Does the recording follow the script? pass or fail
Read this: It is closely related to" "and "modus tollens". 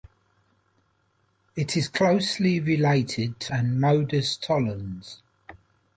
pass